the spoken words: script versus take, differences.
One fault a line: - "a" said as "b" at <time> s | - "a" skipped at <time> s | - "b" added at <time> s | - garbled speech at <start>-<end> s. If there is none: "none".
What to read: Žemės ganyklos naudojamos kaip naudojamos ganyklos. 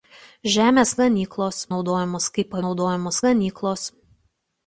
none